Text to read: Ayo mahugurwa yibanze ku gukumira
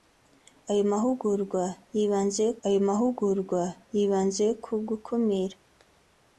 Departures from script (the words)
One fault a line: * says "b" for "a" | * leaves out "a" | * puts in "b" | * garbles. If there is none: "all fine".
* puts in "ayo mahugurwa yibanze"